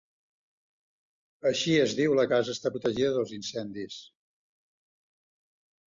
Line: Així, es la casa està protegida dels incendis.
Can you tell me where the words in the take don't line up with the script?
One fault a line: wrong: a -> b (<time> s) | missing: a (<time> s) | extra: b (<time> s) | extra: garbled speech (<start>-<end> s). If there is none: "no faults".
extra: diu (2.0 s)